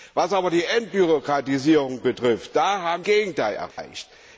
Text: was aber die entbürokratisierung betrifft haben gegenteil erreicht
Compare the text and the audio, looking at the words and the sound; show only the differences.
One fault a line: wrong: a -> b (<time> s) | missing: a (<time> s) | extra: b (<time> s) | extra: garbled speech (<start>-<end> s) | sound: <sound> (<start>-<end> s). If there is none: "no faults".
sound: dropout (3.7-3.8 s)